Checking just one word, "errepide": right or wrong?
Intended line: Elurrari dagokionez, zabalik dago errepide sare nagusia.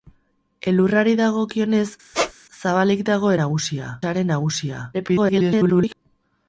wrong